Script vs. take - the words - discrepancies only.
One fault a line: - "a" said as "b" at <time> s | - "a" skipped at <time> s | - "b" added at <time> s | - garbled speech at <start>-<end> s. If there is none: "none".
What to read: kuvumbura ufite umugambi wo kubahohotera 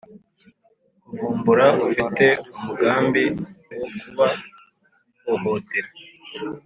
none